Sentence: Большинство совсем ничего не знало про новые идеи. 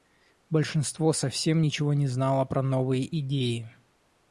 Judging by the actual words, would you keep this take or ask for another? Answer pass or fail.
pass